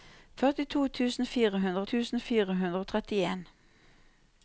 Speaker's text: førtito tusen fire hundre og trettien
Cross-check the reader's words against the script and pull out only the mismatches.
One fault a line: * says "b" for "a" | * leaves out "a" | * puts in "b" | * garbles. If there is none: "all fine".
* puts in "tusen fire hundre"